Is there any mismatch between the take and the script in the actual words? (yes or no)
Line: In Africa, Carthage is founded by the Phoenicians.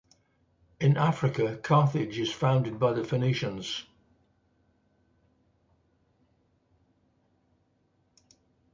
no